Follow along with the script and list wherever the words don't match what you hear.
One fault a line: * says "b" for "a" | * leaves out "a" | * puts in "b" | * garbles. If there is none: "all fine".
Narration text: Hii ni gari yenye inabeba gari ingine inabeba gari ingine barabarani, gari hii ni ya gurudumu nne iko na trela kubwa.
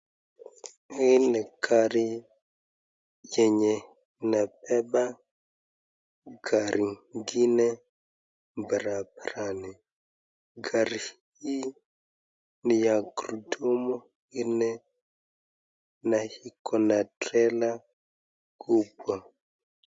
* leaves out "inabeba gari ingine"
* puts in "na"